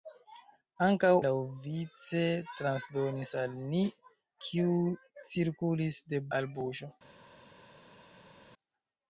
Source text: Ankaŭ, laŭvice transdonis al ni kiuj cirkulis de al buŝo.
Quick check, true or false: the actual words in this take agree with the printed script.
true